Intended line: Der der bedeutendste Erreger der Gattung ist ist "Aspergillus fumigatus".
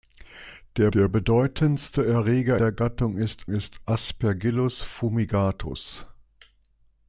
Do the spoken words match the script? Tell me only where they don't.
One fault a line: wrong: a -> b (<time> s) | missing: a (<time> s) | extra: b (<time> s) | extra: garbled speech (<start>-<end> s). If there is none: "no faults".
no faults